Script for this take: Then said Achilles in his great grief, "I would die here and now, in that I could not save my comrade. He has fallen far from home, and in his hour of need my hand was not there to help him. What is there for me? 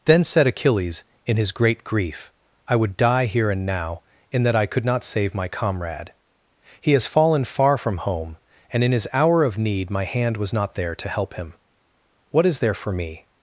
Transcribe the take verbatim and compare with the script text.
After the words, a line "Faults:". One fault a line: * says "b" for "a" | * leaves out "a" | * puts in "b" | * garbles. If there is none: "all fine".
Then said Achilles in his great grief, "I would die here and now, in that I could not save my comrade. He has fallen far from home, and in his hour of need my hand was not there to help him. What is there for me?
Faults:
all fine